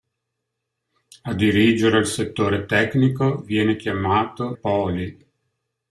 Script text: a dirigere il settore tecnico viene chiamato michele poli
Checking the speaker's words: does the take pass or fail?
fail